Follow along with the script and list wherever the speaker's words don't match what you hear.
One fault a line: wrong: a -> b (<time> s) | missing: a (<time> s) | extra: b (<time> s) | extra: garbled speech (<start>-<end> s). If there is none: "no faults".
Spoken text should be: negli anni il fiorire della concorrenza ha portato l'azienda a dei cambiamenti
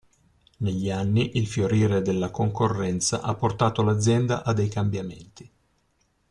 no faults